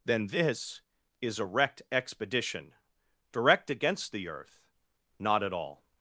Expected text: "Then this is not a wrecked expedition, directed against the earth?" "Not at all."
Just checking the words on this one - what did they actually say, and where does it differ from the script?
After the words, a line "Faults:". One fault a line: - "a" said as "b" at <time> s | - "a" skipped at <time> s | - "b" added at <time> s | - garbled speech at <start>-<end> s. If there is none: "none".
"Then this is a wrecked expedition, direct against the earth?" "Not at all."
Faults:
- "not" skipped at 1.4 s
- "directed" said as "direct" at 3.3 s